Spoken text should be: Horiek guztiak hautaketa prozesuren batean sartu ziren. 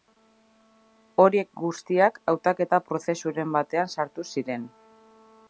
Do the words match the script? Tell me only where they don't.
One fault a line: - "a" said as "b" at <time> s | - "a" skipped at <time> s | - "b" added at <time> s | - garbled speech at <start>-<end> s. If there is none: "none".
none